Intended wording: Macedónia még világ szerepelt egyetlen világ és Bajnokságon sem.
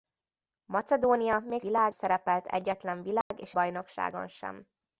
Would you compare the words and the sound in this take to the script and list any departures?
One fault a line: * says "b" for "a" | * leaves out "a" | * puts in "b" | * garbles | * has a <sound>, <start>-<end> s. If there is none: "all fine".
* has a dropout, 3.2-3.3 s